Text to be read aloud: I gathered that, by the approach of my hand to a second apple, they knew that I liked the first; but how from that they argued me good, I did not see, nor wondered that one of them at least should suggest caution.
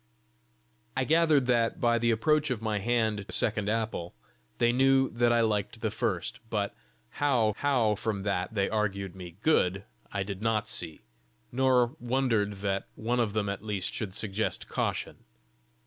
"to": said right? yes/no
no